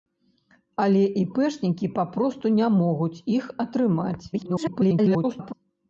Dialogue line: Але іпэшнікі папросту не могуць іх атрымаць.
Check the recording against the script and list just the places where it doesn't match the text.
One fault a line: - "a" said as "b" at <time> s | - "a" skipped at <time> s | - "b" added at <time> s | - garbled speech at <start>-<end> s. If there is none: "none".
- garbled speech at 4.3-5.5 s